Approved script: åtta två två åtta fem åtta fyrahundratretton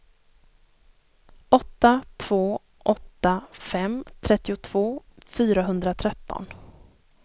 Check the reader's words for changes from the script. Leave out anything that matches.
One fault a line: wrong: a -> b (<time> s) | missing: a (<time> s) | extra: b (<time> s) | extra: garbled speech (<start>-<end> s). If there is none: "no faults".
missing: två (2.6 s)
wrong: åtta -> trettiotvå (4.2 s)